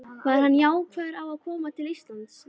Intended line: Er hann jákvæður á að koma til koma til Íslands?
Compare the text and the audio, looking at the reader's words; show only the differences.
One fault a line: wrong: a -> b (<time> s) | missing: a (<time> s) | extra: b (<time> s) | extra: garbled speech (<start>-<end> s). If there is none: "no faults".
wrong: Er -> Var (0.2 s)
missing: koma til (1.9 s)